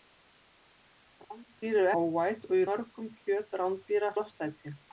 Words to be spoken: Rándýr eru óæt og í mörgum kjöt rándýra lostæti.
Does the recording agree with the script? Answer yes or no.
yes